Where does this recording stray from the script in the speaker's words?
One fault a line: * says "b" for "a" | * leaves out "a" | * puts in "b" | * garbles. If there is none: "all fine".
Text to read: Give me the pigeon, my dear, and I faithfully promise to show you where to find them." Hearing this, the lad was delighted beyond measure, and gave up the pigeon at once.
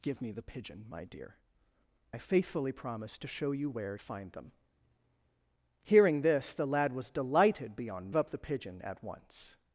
* leaves out "and"
* leaves out "to"
* leaves out "measure and gave"